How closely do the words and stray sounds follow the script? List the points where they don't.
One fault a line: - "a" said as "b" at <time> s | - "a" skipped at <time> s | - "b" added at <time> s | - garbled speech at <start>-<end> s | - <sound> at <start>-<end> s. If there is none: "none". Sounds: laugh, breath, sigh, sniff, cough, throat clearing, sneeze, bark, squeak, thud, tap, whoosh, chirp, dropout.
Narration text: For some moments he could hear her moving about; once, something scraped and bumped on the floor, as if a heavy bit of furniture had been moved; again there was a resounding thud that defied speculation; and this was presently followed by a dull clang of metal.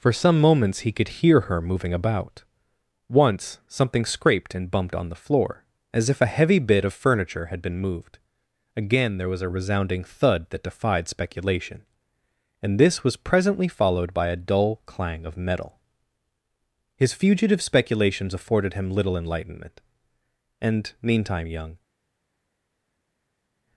- "His fugitive speculations afforded him little enlightenment and meantime young" added at 17.0 s